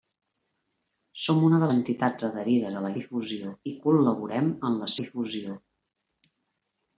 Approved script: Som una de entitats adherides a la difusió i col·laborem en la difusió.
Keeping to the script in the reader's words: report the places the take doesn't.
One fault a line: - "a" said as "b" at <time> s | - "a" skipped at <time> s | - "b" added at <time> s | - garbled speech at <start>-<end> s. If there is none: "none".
none